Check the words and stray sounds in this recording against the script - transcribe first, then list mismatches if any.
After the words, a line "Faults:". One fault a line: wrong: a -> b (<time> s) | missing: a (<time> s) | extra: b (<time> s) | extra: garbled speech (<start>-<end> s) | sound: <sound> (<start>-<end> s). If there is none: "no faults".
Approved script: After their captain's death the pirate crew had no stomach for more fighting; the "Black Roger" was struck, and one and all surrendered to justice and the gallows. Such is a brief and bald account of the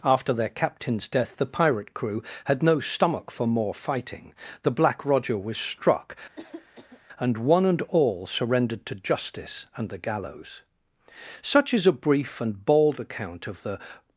After their captain's death the pirate crew had no stomach for more fighting; the "Black Roger" was struck, and one and all surrendered to justice and the gallows. Such is a brief and bald account of the
Faults:
sound: cough (6.4-7.0 s)